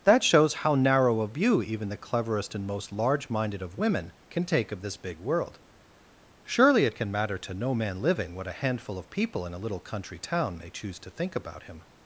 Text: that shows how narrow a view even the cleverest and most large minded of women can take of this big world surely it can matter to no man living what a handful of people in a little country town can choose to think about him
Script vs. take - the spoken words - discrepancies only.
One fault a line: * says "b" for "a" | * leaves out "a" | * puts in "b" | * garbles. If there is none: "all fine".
* says "may" for "can"